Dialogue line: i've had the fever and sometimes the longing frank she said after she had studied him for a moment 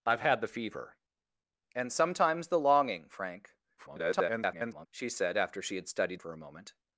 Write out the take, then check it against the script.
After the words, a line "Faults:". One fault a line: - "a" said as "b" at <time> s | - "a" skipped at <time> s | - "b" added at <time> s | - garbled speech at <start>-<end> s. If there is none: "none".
i've had the fever and sometimes the longing frank [garbled] she said after she had studied for a moment
Faults:
- garbled speech at 3.8-4.9 s
- "him" skipped at 6.2 s